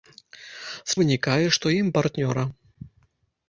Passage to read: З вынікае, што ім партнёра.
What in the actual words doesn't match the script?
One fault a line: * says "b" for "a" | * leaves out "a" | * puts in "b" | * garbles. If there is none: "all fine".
all fine